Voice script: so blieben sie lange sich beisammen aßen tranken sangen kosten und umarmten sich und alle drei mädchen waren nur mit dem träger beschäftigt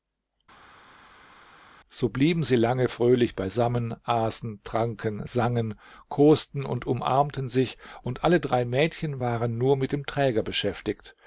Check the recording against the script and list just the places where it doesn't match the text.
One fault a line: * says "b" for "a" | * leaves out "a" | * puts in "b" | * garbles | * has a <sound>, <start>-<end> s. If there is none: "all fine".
* says "fröhlich" for "sich"